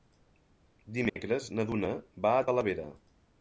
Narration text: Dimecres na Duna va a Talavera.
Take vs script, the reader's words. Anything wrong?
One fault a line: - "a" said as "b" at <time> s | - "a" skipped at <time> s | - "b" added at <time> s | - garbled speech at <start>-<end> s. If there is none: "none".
none